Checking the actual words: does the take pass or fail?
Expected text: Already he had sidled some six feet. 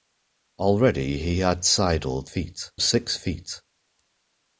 fail